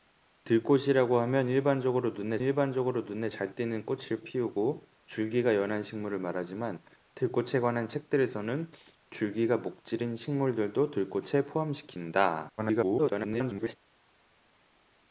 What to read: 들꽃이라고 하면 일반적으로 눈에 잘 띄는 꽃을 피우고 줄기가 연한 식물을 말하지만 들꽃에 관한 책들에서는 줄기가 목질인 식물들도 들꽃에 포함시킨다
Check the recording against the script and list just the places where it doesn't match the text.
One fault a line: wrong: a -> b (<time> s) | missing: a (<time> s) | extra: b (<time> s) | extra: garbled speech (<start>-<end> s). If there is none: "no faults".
extra: 일반적으로 눈에 (2.4 s)
extra: garbled speech (12.6-13.8 s)